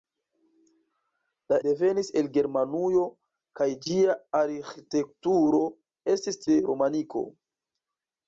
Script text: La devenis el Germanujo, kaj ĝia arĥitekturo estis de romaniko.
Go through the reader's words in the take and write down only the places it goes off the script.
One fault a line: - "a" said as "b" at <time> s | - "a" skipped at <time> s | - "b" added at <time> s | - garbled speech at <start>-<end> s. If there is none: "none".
none